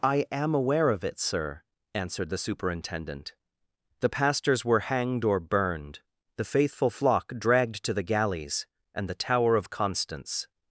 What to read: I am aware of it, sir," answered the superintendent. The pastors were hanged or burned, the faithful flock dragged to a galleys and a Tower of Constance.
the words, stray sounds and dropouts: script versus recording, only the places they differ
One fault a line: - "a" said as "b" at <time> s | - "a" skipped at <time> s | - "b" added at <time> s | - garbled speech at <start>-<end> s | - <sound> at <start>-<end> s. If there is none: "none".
- "a" said as "the" at 7.9 s
- "a" said as "the" at 9.1 s